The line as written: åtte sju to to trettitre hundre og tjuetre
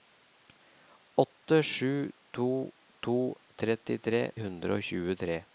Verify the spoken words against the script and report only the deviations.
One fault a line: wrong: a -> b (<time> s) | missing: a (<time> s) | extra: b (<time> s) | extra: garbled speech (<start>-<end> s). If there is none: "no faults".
no faults